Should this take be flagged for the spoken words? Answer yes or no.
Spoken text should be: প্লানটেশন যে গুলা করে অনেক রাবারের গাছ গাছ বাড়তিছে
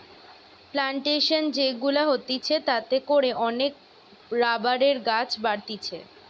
yes